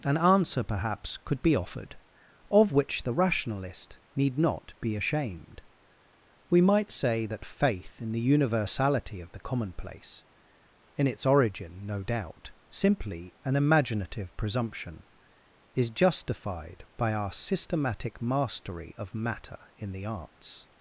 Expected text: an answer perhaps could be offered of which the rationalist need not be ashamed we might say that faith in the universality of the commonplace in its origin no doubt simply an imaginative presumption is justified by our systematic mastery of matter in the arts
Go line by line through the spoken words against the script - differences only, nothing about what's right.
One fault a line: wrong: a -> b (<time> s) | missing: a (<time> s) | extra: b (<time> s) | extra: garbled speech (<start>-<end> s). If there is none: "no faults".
no faults